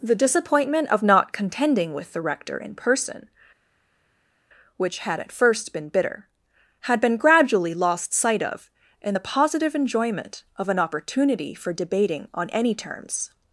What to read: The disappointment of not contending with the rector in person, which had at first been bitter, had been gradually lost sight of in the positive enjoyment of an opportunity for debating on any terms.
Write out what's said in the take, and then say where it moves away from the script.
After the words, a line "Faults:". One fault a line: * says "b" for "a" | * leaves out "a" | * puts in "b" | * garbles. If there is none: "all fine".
The disappointment of not contending with the rector in person, which had at first been bitter, had been gradually lost sight of in the positive enjoyment of an opportunity for debating on any terms.
Faults:
all fine